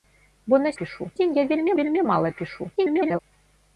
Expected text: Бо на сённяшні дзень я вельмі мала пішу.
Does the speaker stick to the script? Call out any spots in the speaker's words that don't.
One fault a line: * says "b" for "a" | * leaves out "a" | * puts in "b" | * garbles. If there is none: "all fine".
* says "пішу" for "сённяшні"
* puts in "вельмі"
* garbles